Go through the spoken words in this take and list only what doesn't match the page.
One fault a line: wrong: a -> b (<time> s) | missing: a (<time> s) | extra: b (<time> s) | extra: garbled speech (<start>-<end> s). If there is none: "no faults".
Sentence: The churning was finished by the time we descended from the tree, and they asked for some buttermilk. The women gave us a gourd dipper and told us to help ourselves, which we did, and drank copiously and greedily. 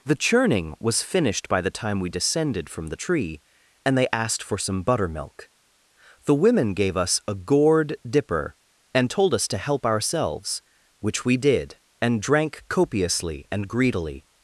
no faults